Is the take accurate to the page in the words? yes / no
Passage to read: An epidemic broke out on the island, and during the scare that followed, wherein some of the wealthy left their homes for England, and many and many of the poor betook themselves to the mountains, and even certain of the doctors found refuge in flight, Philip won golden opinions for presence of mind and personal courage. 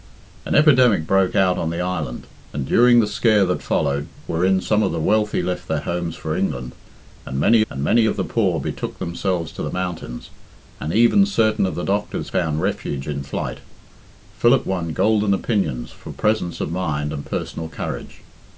yes